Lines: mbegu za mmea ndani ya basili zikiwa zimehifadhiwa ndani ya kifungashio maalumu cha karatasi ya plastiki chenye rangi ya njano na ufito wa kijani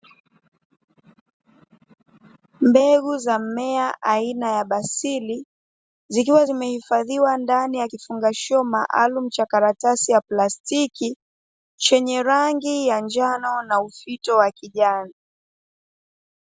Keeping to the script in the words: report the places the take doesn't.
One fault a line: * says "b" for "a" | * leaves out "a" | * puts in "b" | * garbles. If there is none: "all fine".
* says "aina" for "ndani"